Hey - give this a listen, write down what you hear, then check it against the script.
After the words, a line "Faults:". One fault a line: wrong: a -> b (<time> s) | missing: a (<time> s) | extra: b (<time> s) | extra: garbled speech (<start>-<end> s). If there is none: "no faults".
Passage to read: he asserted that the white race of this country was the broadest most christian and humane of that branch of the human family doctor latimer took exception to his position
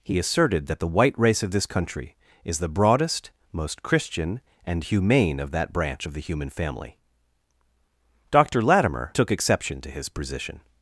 he asserted that the white race of this country is the broadest most christian and humane of that branch of the human family doctor latimer took exception to his position
Faults:
wrong: was -> is (2.4 s)